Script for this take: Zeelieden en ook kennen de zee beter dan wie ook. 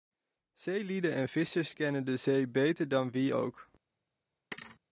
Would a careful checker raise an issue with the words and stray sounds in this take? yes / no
yes